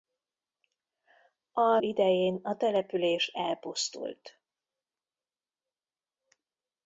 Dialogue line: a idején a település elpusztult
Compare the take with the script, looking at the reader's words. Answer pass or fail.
pass